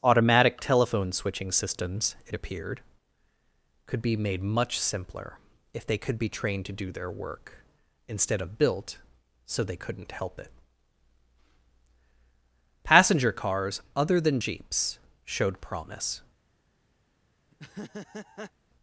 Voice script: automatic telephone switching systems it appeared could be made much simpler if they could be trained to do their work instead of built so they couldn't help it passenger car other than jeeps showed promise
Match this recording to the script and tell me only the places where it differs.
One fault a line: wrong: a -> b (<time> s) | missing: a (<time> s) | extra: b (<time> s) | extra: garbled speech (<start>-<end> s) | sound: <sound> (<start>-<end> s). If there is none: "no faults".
wrong: car -> cars (13.3 s)
sound: laugh (17.5-18.5 s)